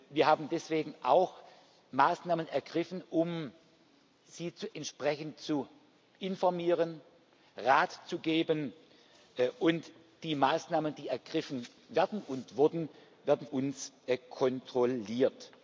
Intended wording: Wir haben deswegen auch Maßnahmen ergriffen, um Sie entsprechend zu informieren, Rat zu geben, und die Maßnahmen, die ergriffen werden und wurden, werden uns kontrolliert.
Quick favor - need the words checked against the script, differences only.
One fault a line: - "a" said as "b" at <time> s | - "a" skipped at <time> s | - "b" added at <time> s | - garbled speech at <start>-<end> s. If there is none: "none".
none